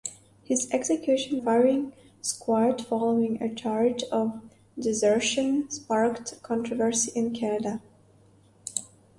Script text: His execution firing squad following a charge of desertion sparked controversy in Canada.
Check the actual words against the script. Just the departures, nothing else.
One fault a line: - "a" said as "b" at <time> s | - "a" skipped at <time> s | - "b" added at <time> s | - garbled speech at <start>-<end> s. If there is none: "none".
none